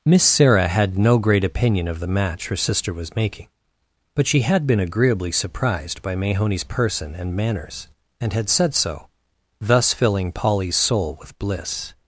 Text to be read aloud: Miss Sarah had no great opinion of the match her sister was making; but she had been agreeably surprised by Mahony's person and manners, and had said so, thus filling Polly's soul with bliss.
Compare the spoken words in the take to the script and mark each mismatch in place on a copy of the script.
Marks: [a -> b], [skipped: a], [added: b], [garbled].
Miss Sarah had no great opinion of the match her sister was making; but she had been agreeably surprised by Mahony's person and manners, and had said so, thus filling Polly's soul with bliss.